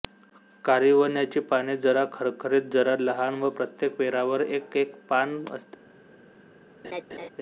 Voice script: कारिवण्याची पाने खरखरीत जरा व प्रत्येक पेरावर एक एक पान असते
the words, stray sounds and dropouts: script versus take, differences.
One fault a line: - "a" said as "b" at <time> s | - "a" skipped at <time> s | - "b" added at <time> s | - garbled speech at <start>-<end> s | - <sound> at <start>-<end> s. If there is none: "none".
- "जरा" added at 1.8 s
- "लहान" added at 3.0 s
- laugh at 6.8-7.3 s